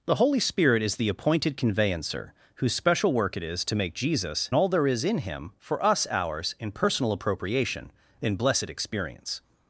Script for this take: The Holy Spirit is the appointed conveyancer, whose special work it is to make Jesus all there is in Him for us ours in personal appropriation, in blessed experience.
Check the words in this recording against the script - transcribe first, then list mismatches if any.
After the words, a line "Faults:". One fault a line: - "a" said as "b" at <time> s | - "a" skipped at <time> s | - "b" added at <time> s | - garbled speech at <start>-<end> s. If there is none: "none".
The Holy Spirit is the appointed conveyancer, whose special work it is to make Jesus all there is in Him for us ours in personal appropriation, in blessed experience.
Faults:
none